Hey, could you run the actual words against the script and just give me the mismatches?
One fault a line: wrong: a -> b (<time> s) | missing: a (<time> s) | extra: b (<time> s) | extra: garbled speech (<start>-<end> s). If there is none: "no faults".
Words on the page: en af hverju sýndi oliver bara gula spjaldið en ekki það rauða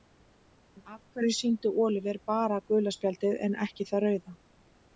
no faults